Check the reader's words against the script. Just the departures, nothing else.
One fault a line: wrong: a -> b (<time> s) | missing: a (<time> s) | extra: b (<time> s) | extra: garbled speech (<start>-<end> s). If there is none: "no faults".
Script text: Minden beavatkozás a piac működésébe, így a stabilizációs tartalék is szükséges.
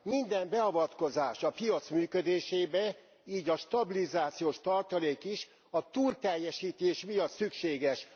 extra: a túlteljesítés miatt (5.7 s)